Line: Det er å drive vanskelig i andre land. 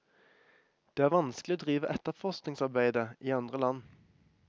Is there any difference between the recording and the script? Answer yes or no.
yes